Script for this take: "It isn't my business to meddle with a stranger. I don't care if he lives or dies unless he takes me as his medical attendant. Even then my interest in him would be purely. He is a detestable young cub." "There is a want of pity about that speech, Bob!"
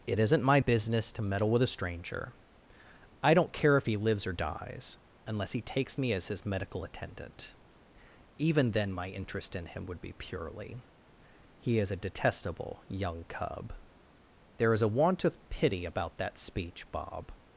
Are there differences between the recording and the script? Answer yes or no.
no